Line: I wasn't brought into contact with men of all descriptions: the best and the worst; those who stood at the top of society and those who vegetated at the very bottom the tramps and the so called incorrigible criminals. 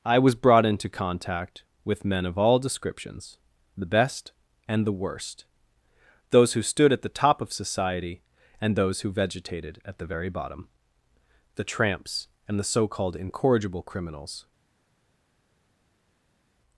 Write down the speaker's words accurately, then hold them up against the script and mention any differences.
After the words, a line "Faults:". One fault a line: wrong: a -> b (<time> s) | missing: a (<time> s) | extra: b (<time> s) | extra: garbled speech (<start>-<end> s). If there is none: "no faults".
I was brought into contact with men of all descriptions: the best and the worst; those who stood at the top of society and those who vegetated at the very bottom the tramps and the so called incorrigible criminals.
Faults:
wrong: wasn't -> was (0.2 s)